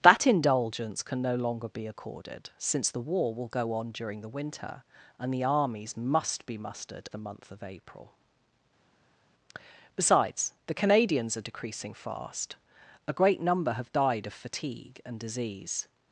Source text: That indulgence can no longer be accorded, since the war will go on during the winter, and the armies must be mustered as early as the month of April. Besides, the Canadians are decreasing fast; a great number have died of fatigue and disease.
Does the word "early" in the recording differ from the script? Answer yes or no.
yes